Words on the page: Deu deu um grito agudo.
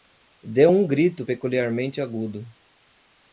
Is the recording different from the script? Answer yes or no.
yes